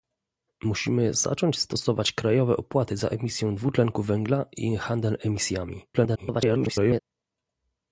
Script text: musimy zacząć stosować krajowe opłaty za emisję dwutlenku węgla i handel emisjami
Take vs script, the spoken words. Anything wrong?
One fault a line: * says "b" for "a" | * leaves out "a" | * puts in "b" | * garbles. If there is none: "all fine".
* garbles